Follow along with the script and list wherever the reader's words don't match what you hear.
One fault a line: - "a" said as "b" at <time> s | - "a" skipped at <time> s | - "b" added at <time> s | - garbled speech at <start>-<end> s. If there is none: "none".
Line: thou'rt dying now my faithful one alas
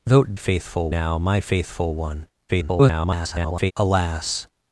- "dying" said as "faithful" at 0.3 s
- garbled speech at 2.5-3.7 s